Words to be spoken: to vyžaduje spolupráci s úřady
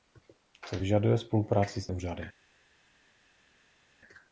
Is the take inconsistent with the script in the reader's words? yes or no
no